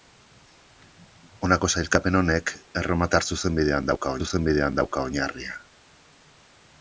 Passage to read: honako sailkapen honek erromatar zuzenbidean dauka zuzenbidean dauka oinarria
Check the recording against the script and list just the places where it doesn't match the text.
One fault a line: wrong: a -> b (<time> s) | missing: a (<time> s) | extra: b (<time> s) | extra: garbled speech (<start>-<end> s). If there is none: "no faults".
no faults